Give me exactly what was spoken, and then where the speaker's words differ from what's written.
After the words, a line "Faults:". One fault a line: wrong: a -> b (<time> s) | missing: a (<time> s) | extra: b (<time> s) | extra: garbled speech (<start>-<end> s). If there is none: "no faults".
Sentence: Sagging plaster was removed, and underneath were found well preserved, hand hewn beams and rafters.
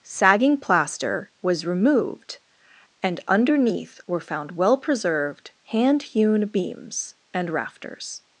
Sagging plaster was removed, and underneath were found well preserved, hand hewn beams and rafters.
Faults:
no faults